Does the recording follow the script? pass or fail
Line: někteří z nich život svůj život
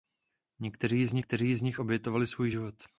fail